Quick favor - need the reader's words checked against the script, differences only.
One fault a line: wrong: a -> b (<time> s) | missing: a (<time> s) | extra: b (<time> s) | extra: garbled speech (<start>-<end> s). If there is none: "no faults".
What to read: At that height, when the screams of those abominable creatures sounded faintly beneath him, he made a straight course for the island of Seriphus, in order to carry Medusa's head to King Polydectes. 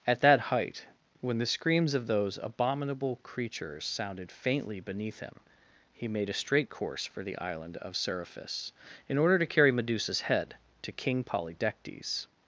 no faults